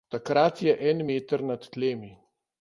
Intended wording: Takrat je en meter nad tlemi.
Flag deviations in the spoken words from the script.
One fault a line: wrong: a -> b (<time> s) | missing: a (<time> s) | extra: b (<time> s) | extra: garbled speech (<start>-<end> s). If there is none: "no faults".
no faults